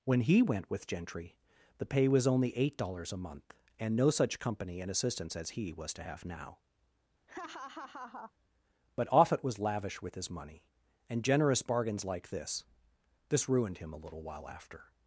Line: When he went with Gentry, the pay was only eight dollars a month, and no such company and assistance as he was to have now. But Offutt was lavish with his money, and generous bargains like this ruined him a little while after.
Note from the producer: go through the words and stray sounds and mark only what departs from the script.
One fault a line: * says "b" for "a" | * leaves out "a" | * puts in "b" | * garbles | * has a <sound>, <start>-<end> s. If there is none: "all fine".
* has a laugh, 7.3-8.3 s
* puts in "this"